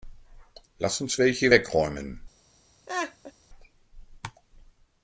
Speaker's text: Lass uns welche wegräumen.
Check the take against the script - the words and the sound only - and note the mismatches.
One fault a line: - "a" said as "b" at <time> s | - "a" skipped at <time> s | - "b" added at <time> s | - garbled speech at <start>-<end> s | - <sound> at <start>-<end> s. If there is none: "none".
- laugh at 2.9-3.3 s